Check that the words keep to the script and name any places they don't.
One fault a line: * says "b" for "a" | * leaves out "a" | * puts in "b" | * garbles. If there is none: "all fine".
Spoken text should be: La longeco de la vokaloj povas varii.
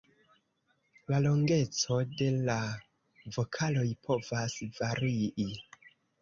all fine